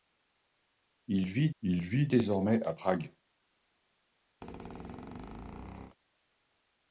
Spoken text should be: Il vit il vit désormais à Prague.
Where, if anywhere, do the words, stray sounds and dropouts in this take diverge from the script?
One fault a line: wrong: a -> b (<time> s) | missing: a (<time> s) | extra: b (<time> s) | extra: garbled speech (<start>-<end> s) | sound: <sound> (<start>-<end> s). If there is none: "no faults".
sound: squeak (4.4-6.0 s)